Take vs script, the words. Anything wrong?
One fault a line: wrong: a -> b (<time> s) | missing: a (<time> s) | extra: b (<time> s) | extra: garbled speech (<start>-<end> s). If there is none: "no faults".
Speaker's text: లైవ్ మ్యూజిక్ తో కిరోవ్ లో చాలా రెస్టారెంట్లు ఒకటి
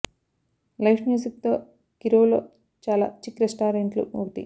extra: చిక్ (3.2 s)